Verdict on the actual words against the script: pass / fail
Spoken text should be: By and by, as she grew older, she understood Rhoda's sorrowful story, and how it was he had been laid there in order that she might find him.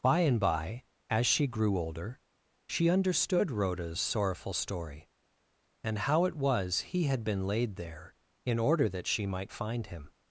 pass